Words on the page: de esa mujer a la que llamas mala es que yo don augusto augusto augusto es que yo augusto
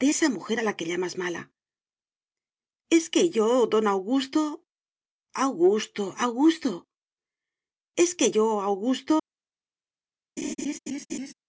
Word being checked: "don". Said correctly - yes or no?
yes